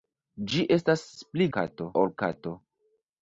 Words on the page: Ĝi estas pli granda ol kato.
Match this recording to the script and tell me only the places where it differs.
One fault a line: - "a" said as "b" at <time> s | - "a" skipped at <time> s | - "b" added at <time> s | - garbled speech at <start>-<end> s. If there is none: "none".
- "granda" said as "kato" at 1.6 s